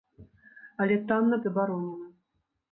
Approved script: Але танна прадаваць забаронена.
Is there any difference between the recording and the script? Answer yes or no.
yes